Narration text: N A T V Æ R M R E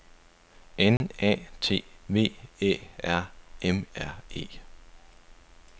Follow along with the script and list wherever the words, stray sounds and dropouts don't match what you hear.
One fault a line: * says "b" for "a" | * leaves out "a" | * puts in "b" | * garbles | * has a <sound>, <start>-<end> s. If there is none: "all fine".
* has a dropout, 1.0-1.0 s